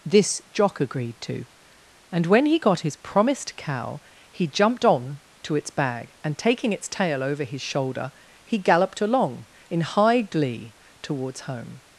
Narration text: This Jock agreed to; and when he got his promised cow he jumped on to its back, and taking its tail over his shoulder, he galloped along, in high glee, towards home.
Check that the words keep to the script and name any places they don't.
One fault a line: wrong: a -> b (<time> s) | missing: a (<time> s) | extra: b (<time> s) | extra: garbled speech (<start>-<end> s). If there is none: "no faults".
wrong: back -> bag (5.7 s)